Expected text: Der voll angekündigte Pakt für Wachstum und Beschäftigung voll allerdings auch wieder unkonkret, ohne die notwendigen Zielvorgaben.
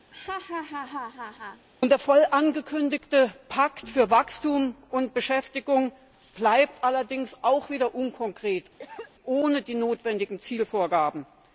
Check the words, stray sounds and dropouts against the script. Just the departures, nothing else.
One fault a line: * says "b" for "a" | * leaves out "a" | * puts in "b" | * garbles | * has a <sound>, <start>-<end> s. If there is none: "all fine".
* has a laugh, 0.1-1.7 s
* says "bleibt" for "voll"
* has a cough, 8.8-9.1 s